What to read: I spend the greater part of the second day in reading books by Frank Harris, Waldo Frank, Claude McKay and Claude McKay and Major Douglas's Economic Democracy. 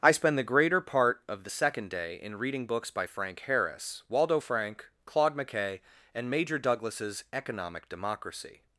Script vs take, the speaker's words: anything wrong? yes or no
yes